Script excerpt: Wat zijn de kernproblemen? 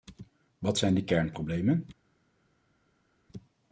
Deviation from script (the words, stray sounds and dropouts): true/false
false